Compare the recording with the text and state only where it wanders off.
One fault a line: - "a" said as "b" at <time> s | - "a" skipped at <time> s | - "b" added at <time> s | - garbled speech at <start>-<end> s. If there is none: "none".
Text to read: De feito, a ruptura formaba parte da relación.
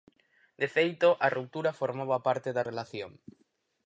none